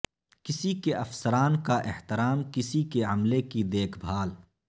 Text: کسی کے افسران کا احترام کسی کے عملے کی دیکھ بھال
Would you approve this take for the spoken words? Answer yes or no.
yes